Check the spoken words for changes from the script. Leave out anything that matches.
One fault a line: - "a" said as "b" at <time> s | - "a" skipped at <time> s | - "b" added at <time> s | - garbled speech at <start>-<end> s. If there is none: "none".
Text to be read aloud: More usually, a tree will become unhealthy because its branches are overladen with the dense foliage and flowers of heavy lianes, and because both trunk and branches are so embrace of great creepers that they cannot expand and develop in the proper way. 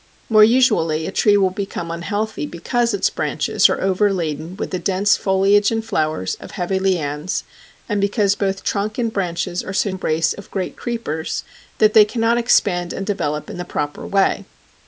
none